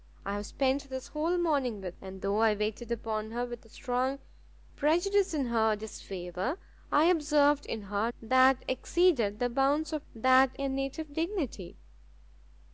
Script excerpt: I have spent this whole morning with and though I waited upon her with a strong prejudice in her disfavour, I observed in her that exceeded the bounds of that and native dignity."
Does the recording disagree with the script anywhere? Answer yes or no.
no